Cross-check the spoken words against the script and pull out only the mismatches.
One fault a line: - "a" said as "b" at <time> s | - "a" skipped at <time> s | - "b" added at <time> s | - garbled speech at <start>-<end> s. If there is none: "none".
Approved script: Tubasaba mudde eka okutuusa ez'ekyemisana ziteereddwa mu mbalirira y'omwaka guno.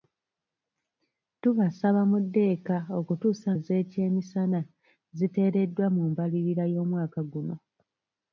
none